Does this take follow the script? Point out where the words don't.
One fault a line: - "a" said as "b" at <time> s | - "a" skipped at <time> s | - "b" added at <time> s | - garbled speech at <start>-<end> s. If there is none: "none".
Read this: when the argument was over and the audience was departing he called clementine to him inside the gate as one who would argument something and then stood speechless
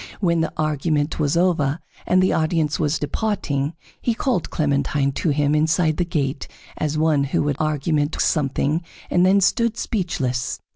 none